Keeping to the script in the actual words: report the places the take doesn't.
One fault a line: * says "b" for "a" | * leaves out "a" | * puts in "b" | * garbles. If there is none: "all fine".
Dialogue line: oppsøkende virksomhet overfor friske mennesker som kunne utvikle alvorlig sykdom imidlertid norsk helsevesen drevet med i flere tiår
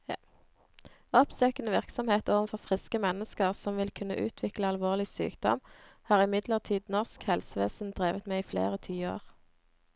* puts in "vil"
* puts in "har"